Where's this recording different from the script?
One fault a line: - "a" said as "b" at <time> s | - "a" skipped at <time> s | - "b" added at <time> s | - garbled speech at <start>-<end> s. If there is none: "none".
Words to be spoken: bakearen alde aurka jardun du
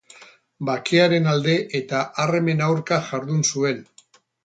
- "eta armen" added at 1.8 s
- "du" said as "zuen" at 3.5 s